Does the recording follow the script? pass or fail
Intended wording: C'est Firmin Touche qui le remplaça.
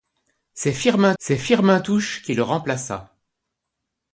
fail